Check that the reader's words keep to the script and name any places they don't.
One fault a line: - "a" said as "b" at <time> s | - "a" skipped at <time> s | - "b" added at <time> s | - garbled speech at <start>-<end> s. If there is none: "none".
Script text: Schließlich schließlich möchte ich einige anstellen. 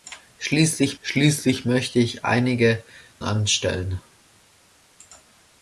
none